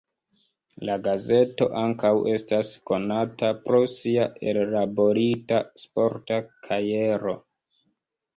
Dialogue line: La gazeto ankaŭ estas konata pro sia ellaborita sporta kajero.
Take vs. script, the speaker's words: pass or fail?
pass